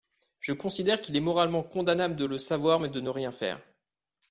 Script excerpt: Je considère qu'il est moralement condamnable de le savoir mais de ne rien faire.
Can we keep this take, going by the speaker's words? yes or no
yes